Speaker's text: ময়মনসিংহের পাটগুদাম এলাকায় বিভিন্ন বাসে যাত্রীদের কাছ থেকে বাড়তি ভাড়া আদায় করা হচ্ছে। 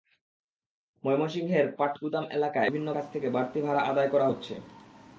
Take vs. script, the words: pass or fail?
fail